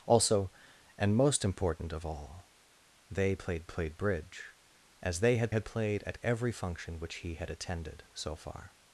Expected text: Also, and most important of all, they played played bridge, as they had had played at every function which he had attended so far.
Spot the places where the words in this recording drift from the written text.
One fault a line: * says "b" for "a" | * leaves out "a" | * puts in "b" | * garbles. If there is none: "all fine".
all fine